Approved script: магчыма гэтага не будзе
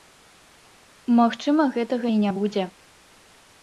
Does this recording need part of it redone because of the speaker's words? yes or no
yes